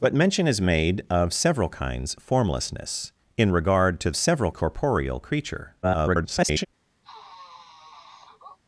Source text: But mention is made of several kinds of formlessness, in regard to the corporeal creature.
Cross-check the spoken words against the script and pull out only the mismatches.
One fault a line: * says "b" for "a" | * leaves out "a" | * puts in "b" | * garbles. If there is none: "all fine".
* leaves out "of"
* says "several" for "the"
* garbles